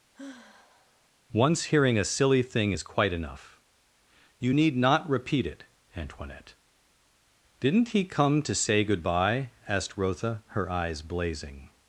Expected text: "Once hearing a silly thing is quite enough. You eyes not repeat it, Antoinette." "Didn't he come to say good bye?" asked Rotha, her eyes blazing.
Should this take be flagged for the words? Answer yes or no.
yes